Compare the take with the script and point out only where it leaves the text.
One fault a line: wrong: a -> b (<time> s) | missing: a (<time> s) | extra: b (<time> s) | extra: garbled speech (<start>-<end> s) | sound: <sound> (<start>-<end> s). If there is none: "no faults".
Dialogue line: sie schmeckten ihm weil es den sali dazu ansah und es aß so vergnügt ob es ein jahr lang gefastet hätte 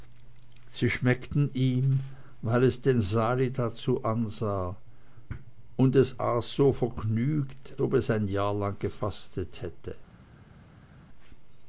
no faults